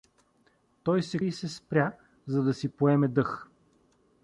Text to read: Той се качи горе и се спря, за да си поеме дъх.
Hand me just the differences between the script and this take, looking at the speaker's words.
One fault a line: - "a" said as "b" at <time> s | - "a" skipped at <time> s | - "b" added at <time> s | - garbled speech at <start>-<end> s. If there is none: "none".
- "качи горе" skipped at 1.2 s